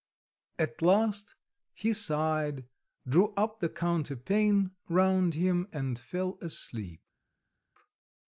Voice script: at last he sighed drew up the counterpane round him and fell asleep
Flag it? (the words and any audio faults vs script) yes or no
no